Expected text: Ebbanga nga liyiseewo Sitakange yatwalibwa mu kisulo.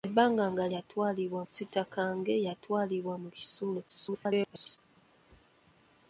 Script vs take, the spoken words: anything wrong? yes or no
yes